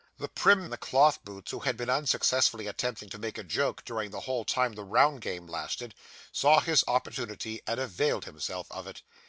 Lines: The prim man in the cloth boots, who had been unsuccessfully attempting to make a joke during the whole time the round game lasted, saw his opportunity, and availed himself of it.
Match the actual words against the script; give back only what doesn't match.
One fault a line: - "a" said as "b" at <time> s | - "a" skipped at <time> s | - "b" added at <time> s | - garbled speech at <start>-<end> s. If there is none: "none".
- "man" skipped at 0.7 s